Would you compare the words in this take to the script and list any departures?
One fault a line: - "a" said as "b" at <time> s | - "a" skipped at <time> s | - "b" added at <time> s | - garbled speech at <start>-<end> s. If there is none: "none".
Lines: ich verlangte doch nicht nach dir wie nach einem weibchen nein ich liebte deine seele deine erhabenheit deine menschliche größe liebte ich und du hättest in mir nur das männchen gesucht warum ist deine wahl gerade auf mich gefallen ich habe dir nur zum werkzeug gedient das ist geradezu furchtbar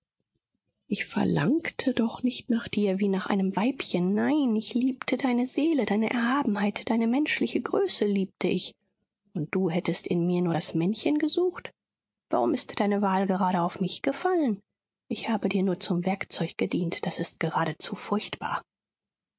none